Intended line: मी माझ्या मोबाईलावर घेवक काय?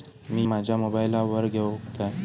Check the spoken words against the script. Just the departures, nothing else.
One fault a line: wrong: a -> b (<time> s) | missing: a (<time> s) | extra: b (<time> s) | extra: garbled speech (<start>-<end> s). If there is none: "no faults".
no faults